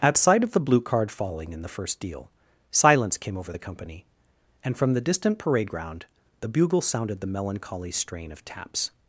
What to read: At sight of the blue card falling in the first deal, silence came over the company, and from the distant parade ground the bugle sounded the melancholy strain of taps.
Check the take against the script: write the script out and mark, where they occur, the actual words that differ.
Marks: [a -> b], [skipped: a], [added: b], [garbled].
At sight of the blue card falling in the first deal, silence came over the company, and from the distant parade ground the bugle sounded the melancholy strain of taps.